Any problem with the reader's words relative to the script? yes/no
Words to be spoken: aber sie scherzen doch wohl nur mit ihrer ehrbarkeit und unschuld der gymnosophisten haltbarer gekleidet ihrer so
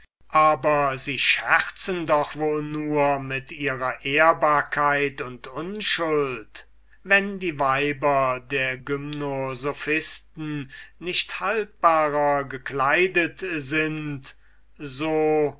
yes